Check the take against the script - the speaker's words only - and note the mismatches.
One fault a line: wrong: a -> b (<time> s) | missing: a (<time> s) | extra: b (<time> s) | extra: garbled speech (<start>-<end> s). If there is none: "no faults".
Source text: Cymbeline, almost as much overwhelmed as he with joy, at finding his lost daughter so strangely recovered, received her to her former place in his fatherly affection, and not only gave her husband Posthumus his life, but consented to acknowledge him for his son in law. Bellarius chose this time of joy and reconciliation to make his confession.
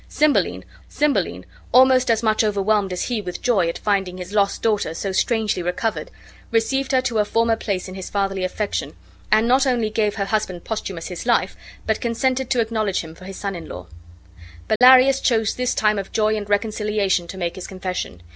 extra: cymbeline (0.9 s)